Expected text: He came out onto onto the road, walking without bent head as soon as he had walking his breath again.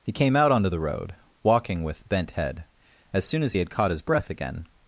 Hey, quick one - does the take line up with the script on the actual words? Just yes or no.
no